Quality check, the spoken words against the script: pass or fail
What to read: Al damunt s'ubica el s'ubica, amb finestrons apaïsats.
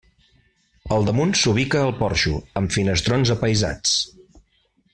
fail